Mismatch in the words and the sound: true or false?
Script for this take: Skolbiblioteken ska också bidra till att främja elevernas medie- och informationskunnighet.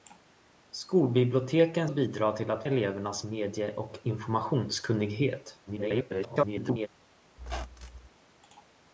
true